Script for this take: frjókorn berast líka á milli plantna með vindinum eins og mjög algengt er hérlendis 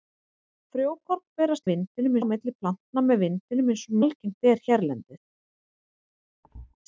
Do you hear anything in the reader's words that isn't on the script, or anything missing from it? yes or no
yes